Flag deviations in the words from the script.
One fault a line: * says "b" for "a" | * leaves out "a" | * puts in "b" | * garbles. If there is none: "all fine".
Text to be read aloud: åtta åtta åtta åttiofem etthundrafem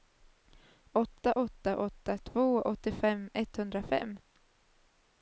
* puts in "två"